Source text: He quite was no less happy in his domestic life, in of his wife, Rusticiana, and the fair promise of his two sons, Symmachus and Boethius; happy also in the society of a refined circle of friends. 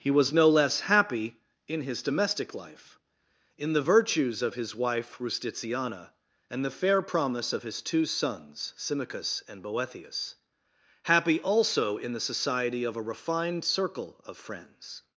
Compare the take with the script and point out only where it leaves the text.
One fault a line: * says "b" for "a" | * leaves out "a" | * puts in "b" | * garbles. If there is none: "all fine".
* leaves out "quite"
* puts in "the virtues"